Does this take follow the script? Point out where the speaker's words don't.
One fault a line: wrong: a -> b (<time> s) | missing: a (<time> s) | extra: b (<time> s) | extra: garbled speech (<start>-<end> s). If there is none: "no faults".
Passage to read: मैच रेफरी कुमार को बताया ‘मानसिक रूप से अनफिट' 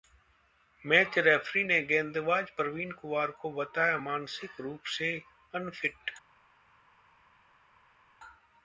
extra: ने गेंदबाज प्रवीण (1.6 s)